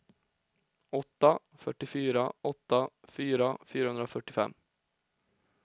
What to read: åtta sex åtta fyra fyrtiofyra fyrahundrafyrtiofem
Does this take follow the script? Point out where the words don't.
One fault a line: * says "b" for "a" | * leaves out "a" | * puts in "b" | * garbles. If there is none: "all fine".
* says "fyrtiofyra" for "sex"
* leaves out "fyrtiofyra"